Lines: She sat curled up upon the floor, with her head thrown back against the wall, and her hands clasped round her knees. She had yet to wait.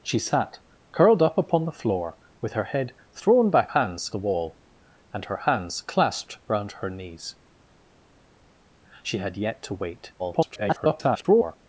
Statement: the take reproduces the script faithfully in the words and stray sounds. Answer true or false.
false